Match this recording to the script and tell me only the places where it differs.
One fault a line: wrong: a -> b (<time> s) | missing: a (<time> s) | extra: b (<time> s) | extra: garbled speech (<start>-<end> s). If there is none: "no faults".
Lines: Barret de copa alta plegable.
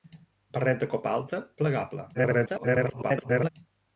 extra: garbled speech (2.1-3.5 s)